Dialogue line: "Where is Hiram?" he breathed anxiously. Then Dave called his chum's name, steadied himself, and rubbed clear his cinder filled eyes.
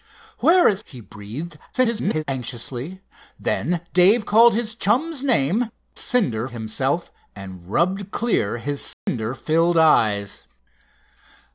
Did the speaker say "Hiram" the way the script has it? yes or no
no